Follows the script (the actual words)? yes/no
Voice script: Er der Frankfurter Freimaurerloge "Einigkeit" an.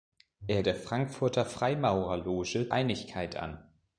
yes